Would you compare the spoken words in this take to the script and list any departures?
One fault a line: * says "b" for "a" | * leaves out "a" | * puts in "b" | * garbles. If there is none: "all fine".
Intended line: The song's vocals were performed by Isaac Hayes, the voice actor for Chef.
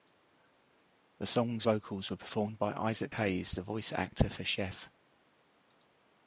all fine